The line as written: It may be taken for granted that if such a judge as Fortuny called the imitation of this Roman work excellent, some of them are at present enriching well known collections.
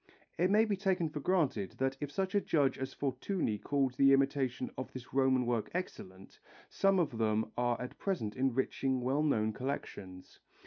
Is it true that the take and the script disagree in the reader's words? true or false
false